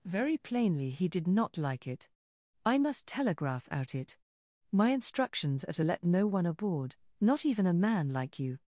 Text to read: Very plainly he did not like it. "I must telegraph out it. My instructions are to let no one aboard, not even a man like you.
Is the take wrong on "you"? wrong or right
right